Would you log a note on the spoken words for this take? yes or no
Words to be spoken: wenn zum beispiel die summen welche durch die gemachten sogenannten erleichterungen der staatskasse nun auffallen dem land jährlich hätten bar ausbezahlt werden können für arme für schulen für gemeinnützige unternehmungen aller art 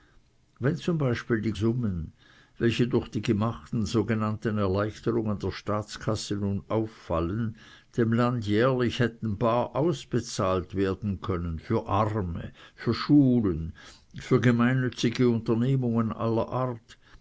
no